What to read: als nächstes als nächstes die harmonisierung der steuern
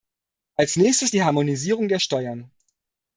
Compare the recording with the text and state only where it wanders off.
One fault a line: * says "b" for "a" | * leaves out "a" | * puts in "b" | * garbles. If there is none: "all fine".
* leaves out "als nächstes"